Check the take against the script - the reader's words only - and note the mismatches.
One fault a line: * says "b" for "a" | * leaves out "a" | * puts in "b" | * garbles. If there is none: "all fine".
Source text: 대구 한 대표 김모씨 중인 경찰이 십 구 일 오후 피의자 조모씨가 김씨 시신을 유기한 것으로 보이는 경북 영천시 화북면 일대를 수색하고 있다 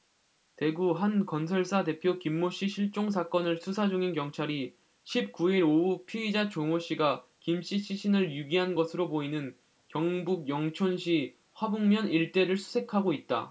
* puts in "건설사"
* puts in "실종 사건을 수사"